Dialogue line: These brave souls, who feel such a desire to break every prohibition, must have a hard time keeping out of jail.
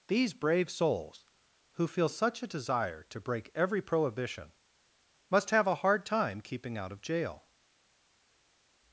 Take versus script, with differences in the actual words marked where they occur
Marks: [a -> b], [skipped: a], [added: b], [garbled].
These brave souls, who feel such a desire to break every prohibition, must have a hard time keeping out of jail.